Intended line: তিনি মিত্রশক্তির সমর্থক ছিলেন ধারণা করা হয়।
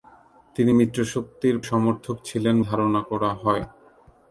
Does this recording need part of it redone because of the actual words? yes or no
no